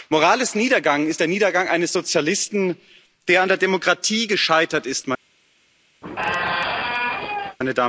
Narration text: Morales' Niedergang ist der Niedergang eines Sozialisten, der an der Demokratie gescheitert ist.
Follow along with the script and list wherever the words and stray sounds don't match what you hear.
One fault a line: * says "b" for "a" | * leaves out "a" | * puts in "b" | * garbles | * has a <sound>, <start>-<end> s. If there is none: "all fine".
* has a squeak, 6.0-7.6 s